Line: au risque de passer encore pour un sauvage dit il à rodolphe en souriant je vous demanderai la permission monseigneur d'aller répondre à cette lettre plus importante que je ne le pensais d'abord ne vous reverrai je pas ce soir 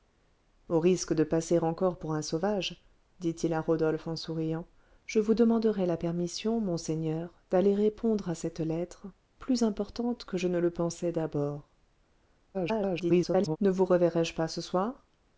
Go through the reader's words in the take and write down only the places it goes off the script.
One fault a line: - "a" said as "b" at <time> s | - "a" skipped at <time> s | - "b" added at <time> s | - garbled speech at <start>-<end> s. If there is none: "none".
- garbled speech at 12.5-13.6 s